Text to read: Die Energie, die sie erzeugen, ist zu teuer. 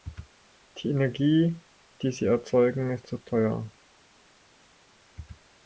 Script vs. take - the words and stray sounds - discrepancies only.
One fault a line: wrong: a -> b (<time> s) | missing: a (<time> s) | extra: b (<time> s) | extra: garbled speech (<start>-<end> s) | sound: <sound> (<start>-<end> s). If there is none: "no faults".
no faults